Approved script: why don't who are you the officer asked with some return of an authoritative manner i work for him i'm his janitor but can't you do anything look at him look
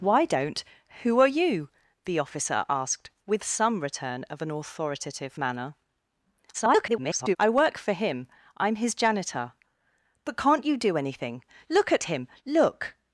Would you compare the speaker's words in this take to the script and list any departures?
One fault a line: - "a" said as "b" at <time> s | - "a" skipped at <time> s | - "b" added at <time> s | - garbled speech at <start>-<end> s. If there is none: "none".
- garbled speech at 6.5-7.4 s